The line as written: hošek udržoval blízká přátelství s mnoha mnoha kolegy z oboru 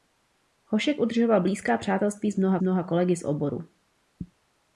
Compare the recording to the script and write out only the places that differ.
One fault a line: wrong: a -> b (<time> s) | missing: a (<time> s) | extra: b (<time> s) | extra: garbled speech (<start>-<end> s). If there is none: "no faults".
no faults